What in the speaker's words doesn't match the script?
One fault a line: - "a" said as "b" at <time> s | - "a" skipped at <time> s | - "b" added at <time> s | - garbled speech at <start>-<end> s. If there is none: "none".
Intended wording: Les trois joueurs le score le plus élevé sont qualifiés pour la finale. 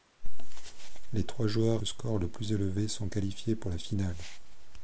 none